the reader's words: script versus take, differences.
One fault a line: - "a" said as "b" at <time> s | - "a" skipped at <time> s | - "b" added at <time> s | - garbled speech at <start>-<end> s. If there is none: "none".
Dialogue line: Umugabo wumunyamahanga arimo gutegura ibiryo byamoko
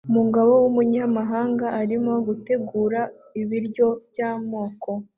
none